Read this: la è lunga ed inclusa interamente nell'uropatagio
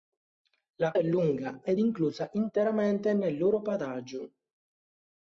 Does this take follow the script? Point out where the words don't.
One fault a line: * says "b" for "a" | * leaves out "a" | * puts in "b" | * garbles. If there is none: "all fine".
all fine